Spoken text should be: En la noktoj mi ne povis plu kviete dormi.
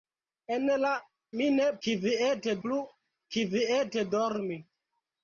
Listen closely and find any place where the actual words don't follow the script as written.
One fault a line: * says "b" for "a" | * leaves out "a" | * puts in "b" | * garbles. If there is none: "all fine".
* leaves out "noktoj"
* says "kviete" for "povis"